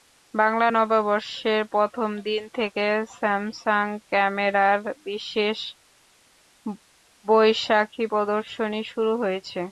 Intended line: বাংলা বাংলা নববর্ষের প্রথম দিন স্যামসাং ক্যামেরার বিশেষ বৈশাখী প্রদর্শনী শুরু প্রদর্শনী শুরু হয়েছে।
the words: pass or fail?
fail